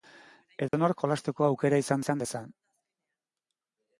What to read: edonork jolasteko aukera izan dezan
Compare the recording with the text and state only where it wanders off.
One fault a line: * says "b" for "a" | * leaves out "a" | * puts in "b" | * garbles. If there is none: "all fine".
* puts in "izan"